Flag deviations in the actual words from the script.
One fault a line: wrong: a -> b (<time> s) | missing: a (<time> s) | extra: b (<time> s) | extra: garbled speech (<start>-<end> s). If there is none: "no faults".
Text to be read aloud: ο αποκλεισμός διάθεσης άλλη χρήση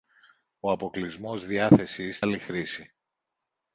no faults